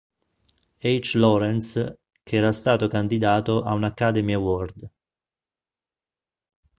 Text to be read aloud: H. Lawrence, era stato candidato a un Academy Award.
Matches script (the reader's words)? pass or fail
fail